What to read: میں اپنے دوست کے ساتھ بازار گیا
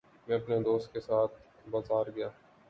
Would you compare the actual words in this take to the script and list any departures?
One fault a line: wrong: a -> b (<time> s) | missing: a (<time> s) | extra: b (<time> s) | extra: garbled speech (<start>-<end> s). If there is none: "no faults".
no faults